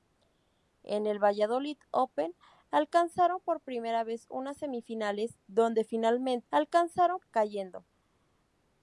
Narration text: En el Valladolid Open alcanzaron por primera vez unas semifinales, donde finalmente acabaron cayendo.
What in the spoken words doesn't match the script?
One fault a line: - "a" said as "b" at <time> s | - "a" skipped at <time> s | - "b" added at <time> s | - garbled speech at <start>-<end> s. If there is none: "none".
- "acabaron" said as "alcanzaron" at 6.5 s